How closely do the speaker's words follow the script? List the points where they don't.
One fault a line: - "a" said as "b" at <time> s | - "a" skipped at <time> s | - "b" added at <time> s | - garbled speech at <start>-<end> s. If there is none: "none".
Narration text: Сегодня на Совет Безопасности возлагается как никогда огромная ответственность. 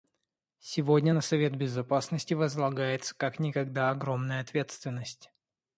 none